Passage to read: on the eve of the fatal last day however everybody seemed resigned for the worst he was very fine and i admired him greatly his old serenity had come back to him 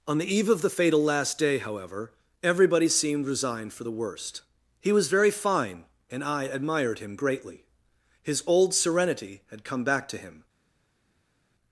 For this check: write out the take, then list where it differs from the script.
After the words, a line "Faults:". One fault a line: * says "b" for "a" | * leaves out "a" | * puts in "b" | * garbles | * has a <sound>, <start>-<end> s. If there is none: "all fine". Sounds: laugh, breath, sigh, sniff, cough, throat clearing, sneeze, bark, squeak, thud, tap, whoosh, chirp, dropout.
on the eve of the fatal last day however everybody seemed resigned for the worst he was very fine and i admired him greatly his old serenity had come back to him
Faults:
all fine